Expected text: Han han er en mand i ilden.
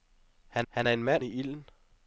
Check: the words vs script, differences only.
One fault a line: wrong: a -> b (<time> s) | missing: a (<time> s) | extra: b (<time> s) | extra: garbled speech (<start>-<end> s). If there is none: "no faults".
no faults